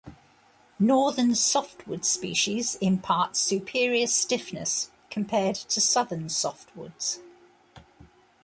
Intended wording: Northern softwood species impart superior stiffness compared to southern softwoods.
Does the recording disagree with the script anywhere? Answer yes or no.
no